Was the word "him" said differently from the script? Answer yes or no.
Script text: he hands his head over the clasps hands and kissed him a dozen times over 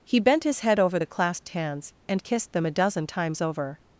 yes